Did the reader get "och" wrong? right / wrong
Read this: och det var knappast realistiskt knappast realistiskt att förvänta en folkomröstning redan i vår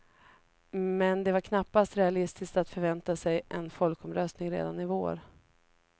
wrong